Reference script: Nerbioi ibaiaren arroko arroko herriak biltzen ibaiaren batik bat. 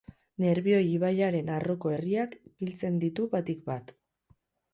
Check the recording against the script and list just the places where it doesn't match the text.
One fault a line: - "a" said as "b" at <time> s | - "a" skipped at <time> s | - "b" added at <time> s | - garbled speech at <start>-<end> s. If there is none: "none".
- "arroko" skipped at 1.9 s
- "ibaiaren" said as "ditu" at 3.1 s